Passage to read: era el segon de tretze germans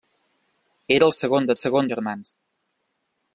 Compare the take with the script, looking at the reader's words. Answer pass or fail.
fail